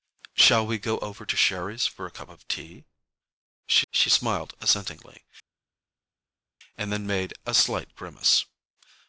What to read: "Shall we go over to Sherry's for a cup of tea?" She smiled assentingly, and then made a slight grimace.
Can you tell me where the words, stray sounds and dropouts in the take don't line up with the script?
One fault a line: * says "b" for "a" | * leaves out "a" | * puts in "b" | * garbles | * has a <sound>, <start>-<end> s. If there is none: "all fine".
* puts in "she"